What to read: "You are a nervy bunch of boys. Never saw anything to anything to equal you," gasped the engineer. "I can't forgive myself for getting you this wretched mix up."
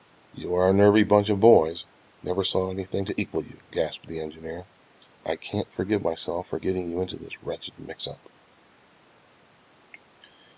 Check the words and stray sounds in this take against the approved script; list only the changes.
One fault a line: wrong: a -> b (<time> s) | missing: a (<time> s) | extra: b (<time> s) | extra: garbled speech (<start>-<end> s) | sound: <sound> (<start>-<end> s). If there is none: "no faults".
missing: anything to (3.2 s)
extra: into (7.0 s)